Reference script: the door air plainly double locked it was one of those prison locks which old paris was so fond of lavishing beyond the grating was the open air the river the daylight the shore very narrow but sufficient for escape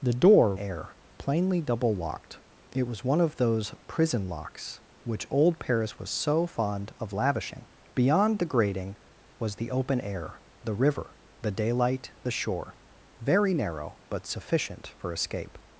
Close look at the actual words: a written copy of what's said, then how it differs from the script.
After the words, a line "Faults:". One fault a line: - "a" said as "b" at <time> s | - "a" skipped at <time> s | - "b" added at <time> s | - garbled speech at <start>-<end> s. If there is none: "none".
the door air plainly double locked it was one of those prison locks which old paris was so fond of lavishing beyond the grating was the open air the river the daylight the shore very narrow but sufficient for escape
Faults:
none